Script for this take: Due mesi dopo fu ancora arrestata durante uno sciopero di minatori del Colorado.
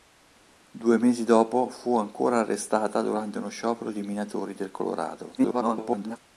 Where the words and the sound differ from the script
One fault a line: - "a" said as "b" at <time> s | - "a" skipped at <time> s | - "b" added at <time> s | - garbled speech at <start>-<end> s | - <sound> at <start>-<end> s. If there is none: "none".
- garbled speech at 5.4-6.2 s